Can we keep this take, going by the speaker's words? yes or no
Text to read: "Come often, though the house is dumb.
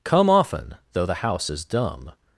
yes